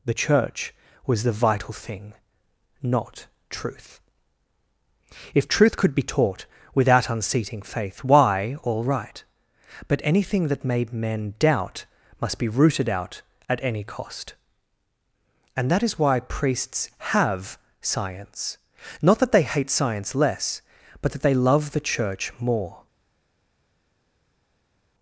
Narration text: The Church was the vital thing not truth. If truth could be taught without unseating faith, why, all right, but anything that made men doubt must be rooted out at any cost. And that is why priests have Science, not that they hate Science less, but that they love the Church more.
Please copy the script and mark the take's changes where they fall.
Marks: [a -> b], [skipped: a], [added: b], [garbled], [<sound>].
The Church was the vital thing not truth. If truth could be taught without unseating faith, why, all right, but anything that made men doubt must be rooted out at any cost. And that is why priests have Science, not that they hate Science less, but that they love the Church more.